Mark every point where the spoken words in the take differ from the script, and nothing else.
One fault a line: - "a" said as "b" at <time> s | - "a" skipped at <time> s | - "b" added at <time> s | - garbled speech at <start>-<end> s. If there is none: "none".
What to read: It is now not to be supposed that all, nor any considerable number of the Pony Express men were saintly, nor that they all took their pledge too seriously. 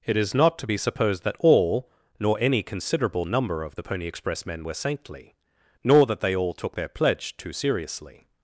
- "now" skipped at 0.3 s